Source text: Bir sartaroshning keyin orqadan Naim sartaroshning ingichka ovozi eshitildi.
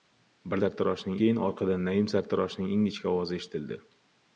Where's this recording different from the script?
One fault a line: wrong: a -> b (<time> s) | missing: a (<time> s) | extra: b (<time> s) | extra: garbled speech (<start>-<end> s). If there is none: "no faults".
no faults